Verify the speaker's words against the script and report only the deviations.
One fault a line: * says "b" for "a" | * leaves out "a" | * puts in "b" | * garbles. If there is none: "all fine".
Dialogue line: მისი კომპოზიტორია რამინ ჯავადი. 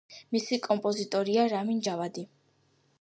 all fine